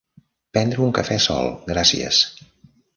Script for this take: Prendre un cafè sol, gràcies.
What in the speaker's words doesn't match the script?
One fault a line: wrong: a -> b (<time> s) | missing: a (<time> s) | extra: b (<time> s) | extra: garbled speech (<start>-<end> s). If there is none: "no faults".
no faults